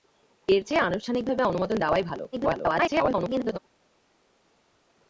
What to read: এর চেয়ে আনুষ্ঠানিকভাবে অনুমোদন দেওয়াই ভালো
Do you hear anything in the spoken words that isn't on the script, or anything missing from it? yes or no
yes